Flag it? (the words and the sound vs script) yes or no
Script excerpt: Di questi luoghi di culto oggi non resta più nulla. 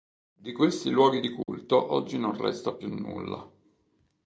yes